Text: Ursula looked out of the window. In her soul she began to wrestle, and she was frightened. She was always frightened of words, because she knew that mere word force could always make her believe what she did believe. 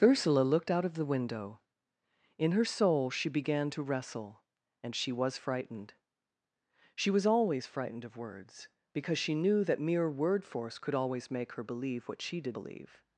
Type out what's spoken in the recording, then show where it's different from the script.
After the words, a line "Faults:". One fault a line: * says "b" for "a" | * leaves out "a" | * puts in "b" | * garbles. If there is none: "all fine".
Ursula looked out of the window. In her soul she began to wrestle, and she was frightened. She was always frightened of words, because she knew that mere word force could always make her believe what she did believe.
Faults:
all fine